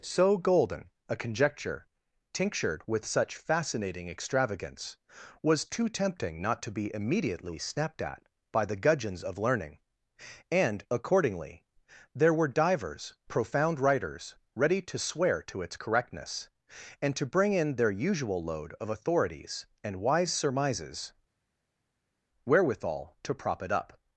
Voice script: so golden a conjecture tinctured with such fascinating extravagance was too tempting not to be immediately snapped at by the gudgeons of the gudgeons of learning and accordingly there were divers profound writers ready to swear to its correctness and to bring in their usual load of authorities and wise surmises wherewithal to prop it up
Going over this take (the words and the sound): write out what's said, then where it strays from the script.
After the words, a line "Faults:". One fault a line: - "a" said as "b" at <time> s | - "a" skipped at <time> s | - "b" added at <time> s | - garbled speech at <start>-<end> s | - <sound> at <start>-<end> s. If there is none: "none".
so golden a conjecture tinctured with such fascinating extravagance was too tempting not to be immediately snapped at by the gudgeons of learning and accordingly there were divers profound writers ready to swear to its correctness and to bring in their usual load of authorities and wise surmises wherewithal to prop it up
Faults:
- "the gudgeons of" skipped at 9.4 s